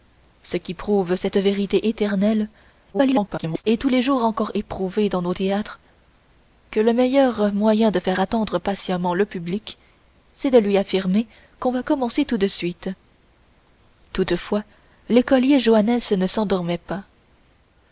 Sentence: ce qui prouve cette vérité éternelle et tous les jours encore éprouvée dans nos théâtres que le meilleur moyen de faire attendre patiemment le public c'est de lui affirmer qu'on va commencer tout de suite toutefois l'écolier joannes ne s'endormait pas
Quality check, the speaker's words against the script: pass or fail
fail